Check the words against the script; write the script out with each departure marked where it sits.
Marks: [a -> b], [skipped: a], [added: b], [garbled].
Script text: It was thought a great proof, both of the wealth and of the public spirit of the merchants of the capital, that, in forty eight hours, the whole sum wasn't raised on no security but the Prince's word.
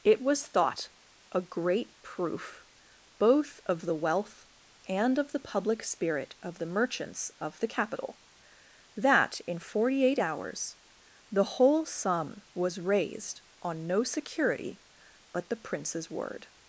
It was thought a great proof, both of the wealth and of the public spirit of the merchants of the capital, that, in forty eight hours, the whole sum [wasn't -> was] raised on no security but the Prince's word.